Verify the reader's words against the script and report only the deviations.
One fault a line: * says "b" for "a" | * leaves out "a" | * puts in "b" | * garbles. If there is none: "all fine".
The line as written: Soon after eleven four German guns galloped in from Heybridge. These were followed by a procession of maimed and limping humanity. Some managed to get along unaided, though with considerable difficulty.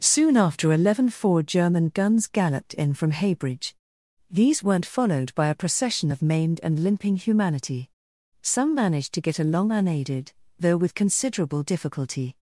* says "weren't" for "were"